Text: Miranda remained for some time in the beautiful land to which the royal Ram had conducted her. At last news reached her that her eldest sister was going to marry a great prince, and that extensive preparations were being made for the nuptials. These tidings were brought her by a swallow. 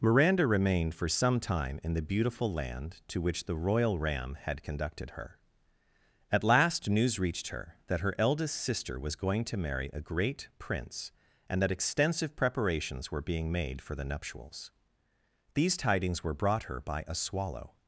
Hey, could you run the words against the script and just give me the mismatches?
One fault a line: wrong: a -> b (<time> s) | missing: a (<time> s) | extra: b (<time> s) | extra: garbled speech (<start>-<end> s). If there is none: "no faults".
no faults